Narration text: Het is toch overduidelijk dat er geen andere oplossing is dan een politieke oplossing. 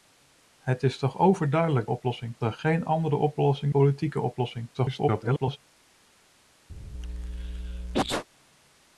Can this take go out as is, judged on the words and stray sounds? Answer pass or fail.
fail